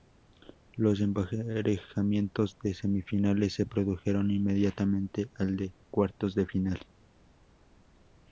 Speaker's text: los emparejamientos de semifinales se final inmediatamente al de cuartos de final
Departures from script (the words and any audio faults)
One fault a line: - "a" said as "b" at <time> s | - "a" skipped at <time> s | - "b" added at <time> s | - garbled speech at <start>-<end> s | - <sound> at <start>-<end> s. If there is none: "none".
- "final" said as "produjeron" at 3.7 s